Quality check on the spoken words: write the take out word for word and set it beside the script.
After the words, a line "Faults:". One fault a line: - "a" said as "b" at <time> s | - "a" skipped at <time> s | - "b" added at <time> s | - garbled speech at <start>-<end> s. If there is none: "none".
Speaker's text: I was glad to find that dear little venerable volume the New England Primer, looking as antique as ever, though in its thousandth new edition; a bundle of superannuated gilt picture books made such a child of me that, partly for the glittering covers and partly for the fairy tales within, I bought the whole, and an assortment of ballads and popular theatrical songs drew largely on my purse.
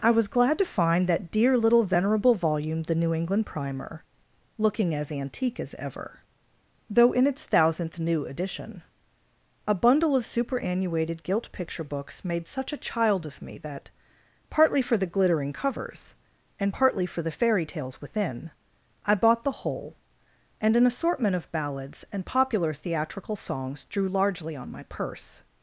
I was glad to find that dear little venerable volume the New England Primer, looking as antique as ever, though in its thousandth new edition; a bundle of superannuated gilt picture books made such a child of me that, partly for the glittering covers and partly for the fairy tales within, I bought the whole, and an assortment of ballads and popular theatrical songs drew largely on my purse.
Faults:
none